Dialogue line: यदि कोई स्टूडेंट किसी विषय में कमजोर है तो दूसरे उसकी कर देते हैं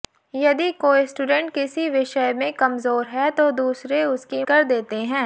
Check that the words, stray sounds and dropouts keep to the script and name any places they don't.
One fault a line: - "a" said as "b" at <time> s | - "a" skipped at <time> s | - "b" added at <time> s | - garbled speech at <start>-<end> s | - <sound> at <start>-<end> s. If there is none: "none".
none